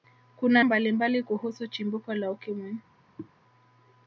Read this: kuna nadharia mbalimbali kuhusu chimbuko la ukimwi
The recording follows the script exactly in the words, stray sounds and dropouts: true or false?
false